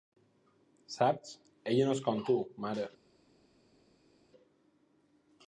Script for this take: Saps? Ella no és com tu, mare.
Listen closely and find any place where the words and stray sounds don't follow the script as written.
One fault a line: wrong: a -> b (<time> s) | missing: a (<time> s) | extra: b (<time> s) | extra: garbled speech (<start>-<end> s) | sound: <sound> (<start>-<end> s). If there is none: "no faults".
no faults